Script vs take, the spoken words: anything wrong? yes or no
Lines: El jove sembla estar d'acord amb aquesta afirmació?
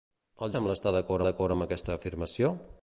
yes